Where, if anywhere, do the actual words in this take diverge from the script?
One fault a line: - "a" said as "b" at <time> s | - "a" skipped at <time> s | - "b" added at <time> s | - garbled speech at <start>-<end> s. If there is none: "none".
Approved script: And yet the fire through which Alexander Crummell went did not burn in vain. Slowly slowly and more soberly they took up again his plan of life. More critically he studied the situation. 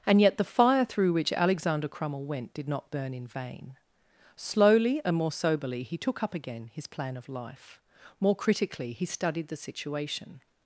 - "slowly" skipped at 5.0 s
- "they" said as "he" at 5.8 s